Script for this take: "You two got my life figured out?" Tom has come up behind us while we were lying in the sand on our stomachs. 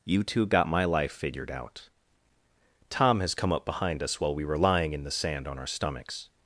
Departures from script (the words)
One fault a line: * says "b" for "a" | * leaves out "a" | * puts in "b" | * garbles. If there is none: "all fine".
all fine